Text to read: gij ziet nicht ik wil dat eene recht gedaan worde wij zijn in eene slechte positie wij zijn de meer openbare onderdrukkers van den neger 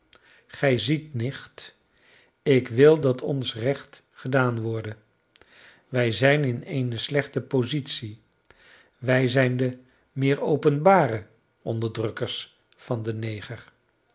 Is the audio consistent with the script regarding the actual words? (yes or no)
no